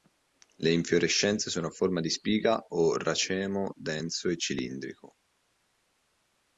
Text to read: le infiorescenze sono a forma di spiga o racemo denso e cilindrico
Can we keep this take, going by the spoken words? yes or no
yes